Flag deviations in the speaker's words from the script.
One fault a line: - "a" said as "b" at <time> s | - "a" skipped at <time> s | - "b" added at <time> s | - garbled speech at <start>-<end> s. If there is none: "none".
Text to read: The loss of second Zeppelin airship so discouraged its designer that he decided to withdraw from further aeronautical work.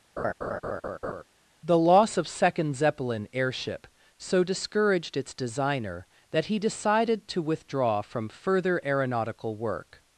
none